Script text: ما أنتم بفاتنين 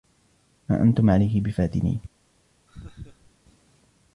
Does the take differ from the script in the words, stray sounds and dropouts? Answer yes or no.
yes